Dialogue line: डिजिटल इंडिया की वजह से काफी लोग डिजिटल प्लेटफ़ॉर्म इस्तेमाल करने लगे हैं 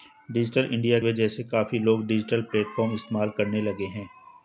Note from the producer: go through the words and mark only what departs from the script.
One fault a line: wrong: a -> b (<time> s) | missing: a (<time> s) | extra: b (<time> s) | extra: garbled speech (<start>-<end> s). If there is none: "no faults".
missing: की (1.0 s)